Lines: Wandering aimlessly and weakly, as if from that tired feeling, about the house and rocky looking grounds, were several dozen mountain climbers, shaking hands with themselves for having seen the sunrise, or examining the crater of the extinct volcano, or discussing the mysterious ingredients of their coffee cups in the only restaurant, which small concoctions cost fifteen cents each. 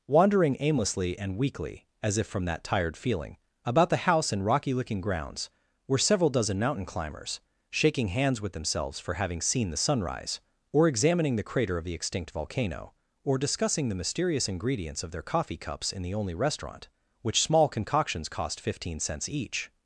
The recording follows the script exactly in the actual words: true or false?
true